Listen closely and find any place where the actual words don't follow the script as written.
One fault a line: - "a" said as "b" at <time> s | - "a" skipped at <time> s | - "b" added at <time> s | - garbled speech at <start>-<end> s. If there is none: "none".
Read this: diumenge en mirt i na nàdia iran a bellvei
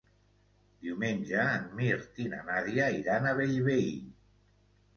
none